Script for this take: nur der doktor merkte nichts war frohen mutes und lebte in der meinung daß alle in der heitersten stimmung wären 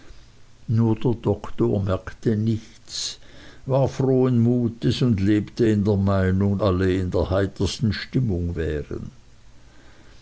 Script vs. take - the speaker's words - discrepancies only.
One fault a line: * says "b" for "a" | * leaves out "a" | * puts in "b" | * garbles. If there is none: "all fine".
* leaves out "daß"